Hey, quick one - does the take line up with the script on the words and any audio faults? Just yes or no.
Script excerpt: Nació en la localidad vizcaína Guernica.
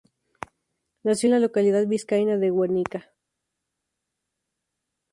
no